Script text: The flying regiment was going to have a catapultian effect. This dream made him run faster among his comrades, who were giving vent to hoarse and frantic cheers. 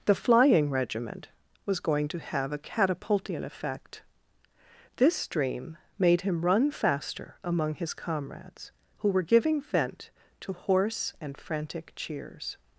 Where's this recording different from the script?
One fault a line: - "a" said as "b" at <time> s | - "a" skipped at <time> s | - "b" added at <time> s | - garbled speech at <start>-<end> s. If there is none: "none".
none